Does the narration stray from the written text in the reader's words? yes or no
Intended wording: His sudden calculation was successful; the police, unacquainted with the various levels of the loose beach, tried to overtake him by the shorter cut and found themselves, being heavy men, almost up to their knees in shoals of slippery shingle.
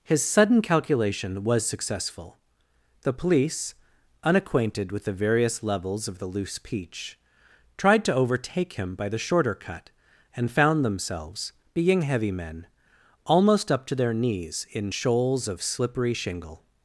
yes